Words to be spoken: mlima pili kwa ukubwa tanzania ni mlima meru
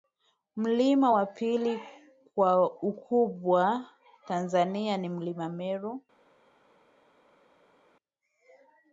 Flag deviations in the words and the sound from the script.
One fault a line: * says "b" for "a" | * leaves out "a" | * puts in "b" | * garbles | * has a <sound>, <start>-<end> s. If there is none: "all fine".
* puts in "wa"